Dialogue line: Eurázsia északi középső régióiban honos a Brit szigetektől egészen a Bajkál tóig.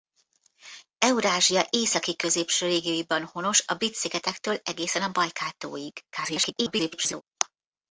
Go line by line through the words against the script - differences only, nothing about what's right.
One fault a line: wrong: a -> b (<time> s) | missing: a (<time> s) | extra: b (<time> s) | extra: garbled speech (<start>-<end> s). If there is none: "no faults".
extra: garbled speech (6.1-7.2 s)